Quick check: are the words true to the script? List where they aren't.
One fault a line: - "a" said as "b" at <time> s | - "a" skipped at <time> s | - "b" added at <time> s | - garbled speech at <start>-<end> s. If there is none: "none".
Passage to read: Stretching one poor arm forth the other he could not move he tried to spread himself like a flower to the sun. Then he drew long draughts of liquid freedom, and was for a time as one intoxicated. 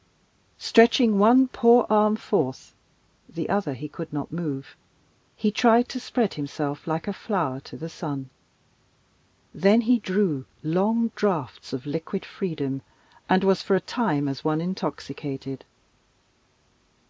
none